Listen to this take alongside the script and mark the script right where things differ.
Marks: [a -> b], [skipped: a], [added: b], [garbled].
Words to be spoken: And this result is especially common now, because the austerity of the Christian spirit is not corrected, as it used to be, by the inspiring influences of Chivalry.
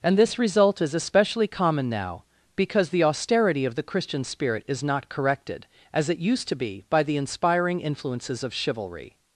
And this result is especially common now, because the austerity of the Christian spirit is not corrected, as it used to be, by the inspiring influences of Chivalry.